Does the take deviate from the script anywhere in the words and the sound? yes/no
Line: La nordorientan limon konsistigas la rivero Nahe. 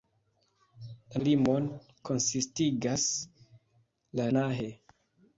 yes